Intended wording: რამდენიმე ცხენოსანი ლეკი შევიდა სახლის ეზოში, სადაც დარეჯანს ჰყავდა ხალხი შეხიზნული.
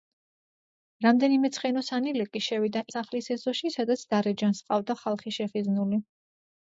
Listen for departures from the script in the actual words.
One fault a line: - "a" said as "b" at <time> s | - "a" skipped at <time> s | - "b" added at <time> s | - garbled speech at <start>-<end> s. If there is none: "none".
none